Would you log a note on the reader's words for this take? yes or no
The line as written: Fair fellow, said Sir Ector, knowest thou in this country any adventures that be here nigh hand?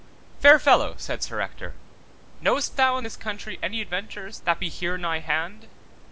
no